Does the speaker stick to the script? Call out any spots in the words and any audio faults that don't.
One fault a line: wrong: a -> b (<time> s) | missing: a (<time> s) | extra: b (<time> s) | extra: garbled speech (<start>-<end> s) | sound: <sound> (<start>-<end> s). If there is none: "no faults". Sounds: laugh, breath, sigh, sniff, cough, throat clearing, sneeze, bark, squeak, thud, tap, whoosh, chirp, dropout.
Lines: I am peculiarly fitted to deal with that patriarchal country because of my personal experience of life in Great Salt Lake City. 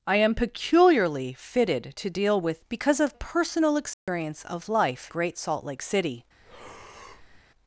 missing: that patriarchal country (2.6 s)
missing: my (3.2 s)
sound: dropout (3.9-4.1 s)
missing: in (5.1 s)
sound: breath (6.4-7.4 s)